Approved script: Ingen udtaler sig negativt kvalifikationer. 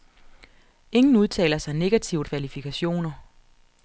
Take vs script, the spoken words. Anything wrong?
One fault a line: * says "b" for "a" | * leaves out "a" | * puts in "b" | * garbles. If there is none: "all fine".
all fine